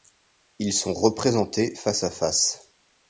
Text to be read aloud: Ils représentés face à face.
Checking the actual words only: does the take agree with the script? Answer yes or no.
no